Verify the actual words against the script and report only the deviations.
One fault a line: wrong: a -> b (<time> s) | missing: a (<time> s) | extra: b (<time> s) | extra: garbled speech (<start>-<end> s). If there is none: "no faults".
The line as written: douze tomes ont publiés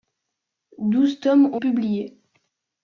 no faults